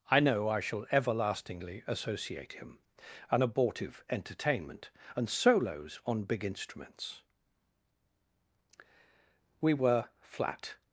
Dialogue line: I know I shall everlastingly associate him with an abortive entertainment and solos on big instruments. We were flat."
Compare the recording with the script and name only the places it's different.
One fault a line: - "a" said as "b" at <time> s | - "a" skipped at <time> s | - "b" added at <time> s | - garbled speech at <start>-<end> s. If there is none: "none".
- "with" skipped at 2.8 s